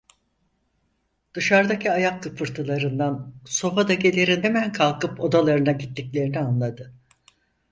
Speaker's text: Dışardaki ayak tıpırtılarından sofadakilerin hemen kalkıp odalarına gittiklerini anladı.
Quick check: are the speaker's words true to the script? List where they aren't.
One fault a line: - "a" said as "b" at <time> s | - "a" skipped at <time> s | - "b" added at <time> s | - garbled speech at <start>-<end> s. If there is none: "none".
none